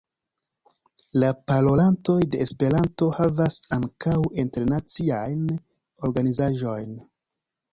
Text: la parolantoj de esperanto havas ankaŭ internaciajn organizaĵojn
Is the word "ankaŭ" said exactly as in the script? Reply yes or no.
yes